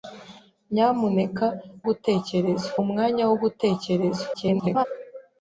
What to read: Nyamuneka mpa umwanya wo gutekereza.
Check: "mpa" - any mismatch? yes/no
yes